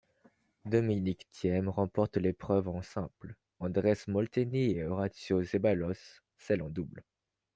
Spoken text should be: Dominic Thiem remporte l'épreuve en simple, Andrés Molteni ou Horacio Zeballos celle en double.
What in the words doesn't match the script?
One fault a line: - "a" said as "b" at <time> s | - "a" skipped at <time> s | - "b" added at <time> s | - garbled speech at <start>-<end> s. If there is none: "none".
- "ou" said as "et" at 4.7 s